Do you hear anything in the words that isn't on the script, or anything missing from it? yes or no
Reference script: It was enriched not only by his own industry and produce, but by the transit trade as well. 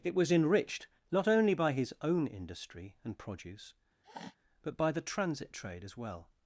no